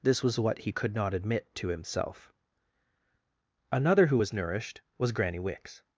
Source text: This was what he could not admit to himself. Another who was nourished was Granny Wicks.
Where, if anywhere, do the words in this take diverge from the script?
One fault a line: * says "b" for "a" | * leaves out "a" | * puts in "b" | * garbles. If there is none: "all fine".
all fine